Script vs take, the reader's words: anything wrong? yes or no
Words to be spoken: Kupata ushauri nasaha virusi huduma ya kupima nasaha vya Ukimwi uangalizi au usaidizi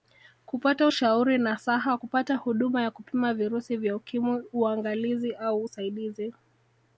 yes